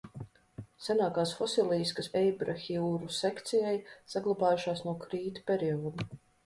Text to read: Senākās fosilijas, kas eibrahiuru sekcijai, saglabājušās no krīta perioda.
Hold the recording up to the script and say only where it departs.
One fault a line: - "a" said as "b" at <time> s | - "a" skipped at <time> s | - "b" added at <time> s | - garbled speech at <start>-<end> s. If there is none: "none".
none